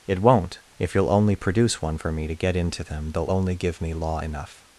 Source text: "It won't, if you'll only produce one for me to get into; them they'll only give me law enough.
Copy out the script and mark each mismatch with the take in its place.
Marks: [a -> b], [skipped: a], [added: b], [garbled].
"It won't, if you'll only produce one for me to get into; them they'll only give me law enough.